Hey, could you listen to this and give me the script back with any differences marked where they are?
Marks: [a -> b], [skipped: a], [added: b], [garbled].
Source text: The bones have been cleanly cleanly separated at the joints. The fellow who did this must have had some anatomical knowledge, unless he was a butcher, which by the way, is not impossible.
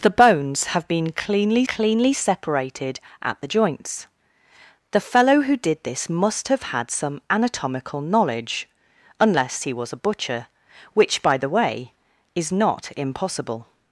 The bones have been cleanly cleanly separated at the joints. The fellow who did this must have had some anatomical knowledge, unless he was a butcher, which by the way, is not impossible.